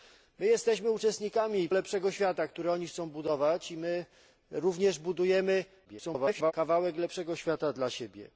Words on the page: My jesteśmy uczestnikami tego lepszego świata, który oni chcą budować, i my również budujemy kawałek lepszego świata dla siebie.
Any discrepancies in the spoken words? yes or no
yes